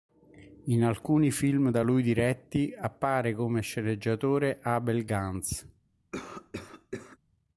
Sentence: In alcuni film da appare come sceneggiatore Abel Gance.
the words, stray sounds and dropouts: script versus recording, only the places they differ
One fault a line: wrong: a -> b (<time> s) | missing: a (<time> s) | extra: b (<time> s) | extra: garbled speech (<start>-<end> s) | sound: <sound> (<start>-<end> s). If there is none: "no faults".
extra: lui diretti (1.8 s)
sound: cough (6.1-7.2 s)